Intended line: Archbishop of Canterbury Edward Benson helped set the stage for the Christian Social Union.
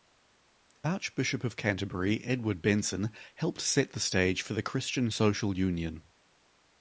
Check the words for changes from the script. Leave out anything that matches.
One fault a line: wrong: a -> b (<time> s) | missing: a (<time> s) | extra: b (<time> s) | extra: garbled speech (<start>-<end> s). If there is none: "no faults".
no faults